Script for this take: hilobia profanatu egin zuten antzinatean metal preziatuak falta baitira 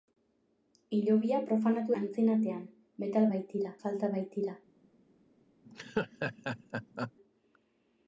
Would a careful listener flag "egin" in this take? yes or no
yes